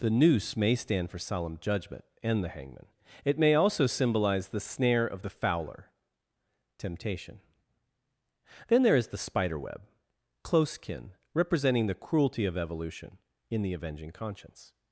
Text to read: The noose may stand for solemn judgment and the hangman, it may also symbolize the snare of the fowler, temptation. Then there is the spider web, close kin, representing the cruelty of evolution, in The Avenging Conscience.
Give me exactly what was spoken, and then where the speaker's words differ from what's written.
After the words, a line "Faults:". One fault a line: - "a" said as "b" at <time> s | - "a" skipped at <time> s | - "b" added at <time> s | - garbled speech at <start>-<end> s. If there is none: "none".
The noose may stand for solemn judgment and the hangman, it may also symbolize the snare of the fowler, temptation. Then there is the spider web, close kin, representing the cruelty of evolution, in The Avenging Conscience.
Faults:
none